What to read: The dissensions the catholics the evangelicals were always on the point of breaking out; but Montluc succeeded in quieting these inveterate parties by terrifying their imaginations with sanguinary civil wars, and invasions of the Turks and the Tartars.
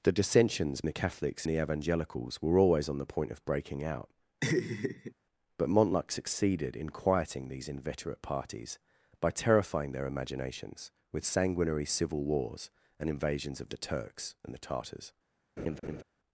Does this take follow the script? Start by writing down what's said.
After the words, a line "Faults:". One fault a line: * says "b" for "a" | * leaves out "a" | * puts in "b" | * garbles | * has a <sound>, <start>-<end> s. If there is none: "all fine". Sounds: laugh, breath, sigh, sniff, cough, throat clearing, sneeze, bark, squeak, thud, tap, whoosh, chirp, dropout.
The dissensions the catholics the evangelicals were always on the point of breaking out; but Montluc succeeded in quieting these inveterate parties by terrifying their imaginations with sanguinary civil wars, and invasions of the Turks and the Tartars.
Faults:
* has a laugh, 4.4-5.1 s
* has a laugh, 15.6-16.0 s